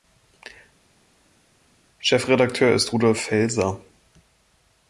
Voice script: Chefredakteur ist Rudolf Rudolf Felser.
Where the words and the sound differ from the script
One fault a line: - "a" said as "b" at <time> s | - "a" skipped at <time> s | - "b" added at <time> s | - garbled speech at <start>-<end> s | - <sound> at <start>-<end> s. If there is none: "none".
- "Rudolf" skipped at 3.2 s